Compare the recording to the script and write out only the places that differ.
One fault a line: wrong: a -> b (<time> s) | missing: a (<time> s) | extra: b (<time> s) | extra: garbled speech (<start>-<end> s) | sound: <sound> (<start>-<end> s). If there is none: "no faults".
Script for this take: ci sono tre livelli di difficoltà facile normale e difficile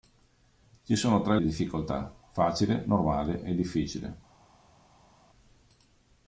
missing: livelli (1.4 s)